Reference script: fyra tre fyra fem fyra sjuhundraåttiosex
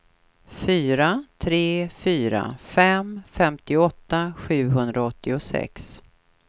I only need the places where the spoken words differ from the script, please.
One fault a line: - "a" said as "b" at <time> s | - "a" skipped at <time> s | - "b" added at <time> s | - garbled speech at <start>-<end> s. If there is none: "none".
- "fyra" said as "femtioåtta" at 3.3 s